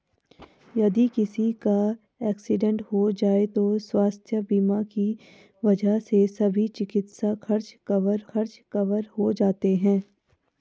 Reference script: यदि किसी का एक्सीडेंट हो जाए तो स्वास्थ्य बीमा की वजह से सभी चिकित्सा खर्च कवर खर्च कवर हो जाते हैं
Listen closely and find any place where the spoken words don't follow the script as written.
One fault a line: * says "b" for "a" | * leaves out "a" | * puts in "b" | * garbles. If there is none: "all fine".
all fine